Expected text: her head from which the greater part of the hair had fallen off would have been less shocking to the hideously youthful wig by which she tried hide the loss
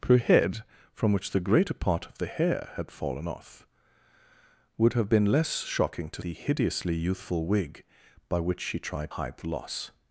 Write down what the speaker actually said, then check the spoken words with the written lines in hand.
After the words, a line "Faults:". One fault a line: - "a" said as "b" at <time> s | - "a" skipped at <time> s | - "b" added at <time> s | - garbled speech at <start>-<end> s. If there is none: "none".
her head from which the greater part of the hair had fallen off would have been less shocking to the hideously youthful wig by which she tried hide the loss
Faults:
none